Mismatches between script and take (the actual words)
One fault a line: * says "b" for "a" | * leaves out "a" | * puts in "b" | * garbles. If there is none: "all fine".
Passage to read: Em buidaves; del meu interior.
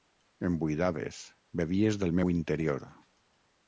* puts in "bevies"